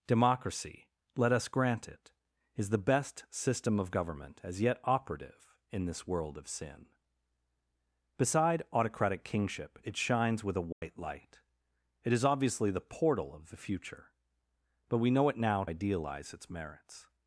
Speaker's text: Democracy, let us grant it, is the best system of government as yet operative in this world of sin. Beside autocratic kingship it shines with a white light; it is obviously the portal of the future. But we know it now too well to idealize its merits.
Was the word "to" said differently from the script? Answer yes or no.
yes